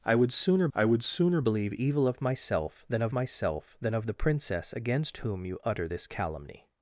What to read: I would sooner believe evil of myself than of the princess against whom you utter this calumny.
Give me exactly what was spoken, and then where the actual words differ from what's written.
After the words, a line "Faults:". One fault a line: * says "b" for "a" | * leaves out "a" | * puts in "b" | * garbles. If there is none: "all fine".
I would sooner I would sooner believe evil of myself than of myself than of the princess against whom you utter this calumny.
Faults:
* puts in "I would sooner"
* puts in "myself than of"